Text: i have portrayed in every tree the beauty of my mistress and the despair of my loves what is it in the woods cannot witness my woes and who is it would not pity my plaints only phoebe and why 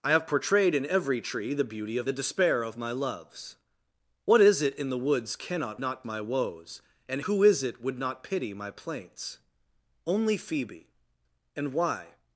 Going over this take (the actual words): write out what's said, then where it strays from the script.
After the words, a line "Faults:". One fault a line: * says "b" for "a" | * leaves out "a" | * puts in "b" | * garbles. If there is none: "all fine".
i have portrayed in every tree the beauty of the despair of my loves what is it in the woods cannot not my woes and who is it would not pity my plaints only phoebe and why
Faults:
* leaves out "my mistress and"
* says "not" for "witness"